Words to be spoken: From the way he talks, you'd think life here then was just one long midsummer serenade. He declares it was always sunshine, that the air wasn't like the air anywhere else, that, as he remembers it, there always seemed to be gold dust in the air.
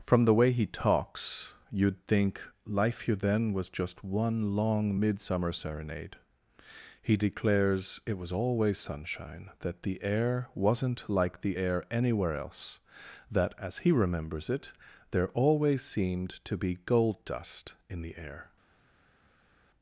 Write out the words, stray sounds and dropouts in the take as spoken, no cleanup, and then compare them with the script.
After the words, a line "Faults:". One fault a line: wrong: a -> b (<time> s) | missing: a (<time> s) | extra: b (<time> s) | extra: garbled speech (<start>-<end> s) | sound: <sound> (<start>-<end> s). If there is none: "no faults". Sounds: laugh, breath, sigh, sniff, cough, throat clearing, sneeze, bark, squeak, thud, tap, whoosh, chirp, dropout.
From the way he talks, you'd think life here then was just one long midsummer serenade. He declares it was always sunshine, that the air wasn't like the air anywhere else, that, as he remembers it, there always seemed to be gold dust in the air.
Faults:
no faults